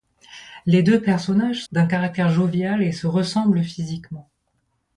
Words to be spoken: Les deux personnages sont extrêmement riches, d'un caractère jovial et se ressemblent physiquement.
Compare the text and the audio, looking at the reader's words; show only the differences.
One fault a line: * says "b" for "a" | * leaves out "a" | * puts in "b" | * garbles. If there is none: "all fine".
* leaves out "sont extrêmement riches"